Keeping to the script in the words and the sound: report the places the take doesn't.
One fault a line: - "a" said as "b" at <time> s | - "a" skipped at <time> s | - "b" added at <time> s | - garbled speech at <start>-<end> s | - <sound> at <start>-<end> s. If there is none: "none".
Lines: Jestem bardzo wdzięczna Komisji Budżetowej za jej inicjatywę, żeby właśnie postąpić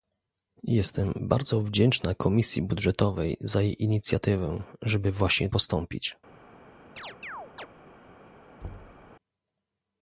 - chirp at 7.0-7.7 s
- thud at 8.6-9.1 s